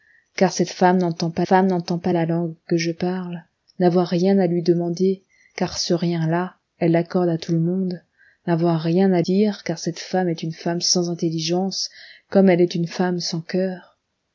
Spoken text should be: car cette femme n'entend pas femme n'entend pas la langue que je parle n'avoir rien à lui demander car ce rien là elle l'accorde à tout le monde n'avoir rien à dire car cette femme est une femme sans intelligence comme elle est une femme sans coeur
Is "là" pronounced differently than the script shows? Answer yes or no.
no